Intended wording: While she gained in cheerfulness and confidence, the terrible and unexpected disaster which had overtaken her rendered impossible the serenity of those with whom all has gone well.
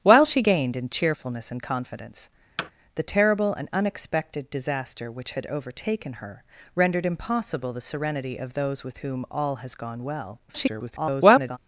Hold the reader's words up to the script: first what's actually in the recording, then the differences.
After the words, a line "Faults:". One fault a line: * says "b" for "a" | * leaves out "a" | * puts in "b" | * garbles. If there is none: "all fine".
While she gained in cheerfulness and confidence, the terrible and unexpected disaster which had overtaken her rendered impossible the serenity of those with whom all has gone well. [garbled]
Faults:
* garbles